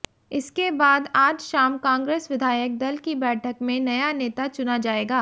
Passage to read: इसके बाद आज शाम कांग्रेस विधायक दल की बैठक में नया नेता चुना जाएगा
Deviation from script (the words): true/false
false